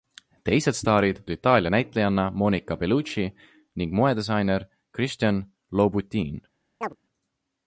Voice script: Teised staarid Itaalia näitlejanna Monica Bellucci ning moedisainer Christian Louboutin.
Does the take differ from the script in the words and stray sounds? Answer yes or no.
yes